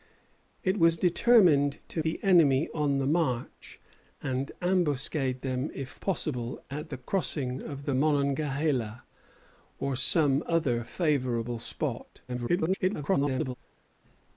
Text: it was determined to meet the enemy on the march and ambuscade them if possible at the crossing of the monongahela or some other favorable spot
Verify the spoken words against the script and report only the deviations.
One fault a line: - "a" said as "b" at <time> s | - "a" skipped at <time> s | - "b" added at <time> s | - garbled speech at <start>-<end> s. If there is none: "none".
- "meet" skipped at 2.0 s
- garbled speech at 12.3-13.6 s